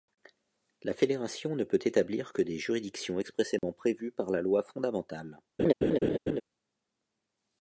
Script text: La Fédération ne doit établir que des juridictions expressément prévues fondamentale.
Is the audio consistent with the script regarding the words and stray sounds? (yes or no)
no